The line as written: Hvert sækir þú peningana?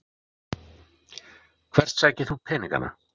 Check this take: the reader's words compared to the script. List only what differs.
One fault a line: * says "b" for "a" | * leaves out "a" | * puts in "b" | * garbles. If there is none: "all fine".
all fine